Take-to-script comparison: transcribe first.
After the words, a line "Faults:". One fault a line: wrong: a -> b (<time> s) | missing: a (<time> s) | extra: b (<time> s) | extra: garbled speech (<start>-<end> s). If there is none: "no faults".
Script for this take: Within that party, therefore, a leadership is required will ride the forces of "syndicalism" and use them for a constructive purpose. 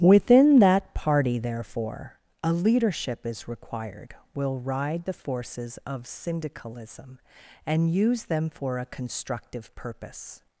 Within that party, therefore, a leadership is required will ride the forces of "syndicalism" and use them for a constructive purpose.
Faults:
no faults